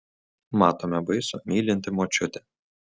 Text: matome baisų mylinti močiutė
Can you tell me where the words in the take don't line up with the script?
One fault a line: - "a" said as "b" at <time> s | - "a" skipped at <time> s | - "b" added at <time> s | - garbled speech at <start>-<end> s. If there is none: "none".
none